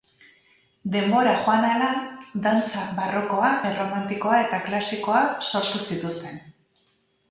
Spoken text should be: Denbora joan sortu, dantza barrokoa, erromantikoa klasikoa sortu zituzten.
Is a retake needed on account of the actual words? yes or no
yes